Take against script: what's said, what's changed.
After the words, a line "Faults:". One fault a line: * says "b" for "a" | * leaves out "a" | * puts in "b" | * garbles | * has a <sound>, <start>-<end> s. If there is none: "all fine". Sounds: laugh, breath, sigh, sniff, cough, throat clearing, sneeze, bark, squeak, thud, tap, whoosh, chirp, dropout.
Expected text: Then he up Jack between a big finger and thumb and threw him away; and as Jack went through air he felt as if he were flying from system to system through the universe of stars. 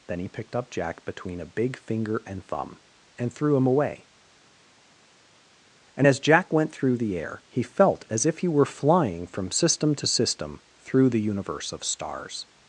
Then he picked up Jack between a big finger and thumb and threw him away; and as Jack went through the air he felt as if he were flying from system to system through the universe of stars.
Faults:
* puts in "picked"
* puts in "the"